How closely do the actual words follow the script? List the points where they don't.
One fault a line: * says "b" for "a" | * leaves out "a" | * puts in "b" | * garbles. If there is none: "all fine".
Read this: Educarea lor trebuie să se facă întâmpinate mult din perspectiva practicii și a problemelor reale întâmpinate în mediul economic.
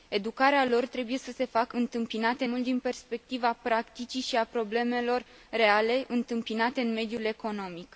all fine